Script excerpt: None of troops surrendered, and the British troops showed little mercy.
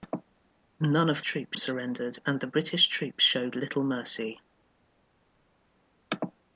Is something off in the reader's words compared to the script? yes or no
no